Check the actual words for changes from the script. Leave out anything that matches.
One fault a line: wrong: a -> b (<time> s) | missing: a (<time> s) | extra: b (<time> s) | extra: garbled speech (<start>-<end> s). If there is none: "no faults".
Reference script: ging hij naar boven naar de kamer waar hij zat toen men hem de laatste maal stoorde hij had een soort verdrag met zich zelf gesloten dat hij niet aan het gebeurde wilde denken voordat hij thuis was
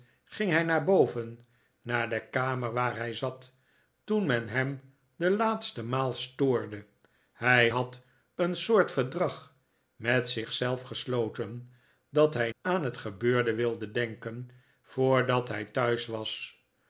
missing: niet (12.5 s)